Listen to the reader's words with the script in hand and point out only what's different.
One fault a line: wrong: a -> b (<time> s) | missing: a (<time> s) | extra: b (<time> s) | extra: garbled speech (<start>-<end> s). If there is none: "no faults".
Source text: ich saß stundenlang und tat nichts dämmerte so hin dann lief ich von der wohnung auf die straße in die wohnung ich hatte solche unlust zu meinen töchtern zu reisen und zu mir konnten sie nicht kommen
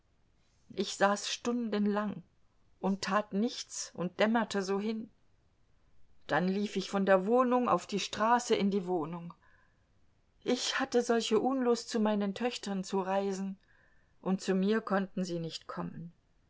extra: und (3.9 s)